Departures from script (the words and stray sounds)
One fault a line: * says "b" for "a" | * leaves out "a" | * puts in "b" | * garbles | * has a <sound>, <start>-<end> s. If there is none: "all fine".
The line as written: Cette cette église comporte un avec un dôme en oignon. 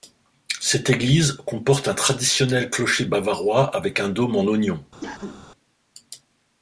* leaves out "cette"
* puts in "traditionnel clocher bavarois"
* has a cough, 5.0-5.4 s